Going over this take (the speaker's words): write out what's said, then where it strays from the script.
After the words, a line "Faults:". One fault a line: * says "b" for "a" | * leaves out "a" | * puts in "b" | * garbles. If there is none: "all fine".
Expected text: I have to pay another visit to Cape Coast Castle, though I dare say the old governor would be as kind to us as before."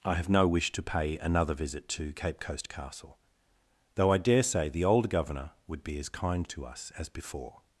I have no wish to pay another visit to Cape Coast Castle, though I dare say the old governor would be as kind to us as before."
Faults:
* puts in "no wish"